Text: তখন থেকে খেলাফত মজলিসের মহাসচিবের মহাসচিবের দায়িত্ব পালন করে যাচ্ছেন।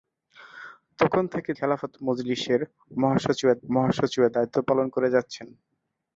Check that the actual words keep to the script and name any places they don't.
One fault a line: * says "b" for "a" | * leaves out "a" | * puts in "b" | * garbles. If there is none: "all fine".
all fine